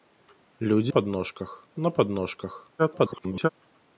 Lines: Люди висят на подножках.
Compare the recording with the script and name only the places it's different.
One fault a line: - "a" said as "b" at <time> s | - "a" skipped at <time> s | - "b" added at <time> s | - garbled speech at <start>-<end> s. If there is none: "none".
- "висят" said as "подножках" at 0.9 s
- garbled speech at 2.8-3.5 s